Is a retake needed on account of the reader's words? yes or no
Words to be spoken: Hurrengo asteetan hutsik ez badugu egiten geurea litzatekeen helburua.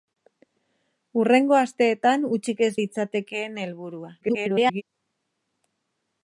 yes